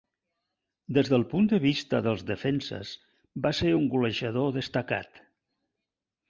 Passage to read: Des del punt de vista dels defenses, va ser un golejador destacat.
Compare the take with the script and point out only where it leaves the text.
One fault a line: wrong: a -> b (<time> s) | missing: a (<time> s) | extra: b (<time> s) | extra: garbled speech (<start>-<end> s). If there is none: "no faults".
no faults